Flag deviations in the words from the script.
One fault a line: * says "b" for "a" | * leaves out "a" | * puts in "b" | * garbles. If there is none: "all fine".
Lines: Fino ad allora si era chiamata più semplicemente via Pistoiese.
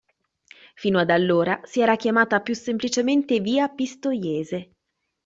all fine